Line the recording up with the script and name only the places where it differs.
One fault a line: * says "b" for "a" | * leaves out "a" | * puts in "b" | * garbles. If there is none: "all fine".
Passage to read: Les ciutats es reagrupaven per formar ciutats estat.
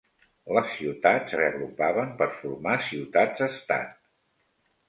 * leaves out "es"